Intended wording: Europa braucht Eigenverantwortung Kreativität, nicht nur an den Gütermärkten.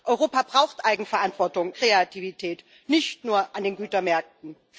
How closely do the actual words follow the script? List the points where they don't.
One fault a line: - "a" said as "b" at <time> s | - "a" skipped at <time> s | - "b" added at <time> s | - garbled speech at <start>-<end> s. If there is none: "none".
none